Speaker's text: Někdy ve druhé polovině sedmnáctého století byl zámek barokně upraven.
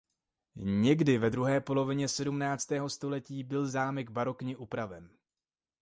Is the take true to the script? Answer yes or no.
yes